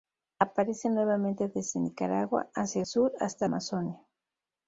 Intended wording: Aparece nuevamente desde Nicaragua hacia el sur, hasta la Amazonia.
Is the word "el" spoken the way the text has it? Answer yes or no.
no